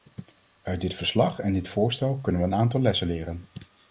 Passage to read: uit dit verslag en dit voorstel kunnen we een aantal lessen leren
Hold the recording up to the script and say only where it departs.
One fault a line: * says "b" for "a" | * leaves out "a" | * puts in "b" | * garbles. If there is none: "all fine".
all fine